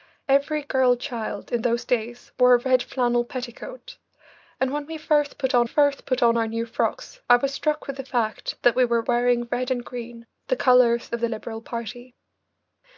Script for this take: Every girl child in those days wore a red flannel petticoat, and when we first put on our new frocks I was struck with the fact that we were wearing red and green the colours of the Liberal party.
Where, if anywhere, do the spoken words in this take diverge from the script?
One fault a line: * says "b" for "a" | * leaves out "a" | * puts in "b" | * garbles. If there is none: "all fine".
* puts in "first put on"